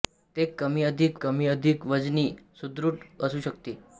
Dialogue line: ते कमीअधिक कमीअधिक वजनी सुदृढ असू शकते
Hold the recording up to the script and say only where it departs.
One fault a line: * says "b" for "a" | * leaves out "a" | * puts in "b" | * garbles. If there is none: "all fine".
all fine